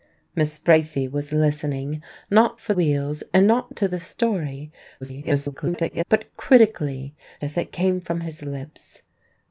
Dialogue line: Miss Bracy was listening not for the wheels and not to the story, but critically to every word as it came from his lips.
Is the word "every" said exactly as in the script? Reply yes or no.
no